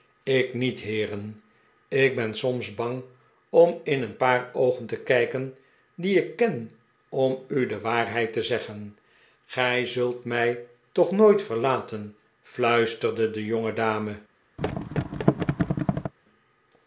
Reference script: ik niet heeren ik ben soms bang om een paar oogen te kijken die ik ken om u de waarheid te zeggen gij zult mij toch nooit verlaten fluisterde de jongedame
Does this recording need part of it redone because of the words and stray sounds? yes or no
yes